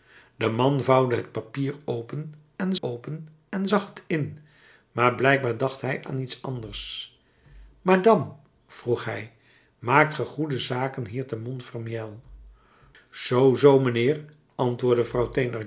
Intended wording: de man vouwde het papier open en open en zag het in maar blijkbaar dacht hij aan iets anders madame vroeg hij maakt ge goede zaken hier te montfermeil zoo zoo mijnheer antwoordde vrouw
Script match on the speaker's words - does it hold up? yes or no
yes